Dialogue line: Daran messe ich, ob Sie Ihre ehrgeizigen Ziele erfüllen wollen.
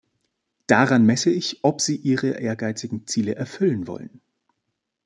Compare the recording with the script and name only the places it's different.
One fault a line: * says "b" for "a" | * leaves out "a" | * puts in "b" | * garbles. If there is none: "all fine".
all fine